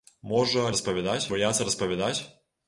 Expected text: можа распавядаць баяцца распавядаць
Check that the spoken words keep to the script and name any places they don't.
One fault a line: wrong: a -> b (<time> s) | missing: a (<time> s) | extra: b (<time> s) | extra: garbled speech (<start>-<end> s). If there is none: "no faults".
no faults